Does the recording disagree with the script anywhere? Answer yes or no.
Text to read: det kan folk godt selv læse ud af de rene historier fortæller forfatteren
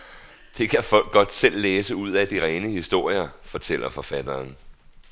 no